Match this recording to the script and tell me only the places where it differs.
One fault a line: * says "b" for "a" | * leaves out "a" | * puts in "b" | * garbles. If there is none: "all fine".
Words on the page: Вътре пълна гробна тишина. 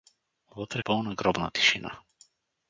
all fine